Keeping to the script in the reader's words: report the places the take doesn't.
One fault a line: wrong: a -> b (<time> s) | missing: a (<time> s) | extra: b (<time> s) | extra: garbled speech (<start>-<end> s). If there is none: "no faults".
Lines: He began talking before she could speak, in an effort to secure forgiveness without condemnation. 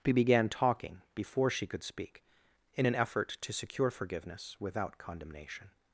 no faults